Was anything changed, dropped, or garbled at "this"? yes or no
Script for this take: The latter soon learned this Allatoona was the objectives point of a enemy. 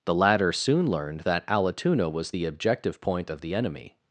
yes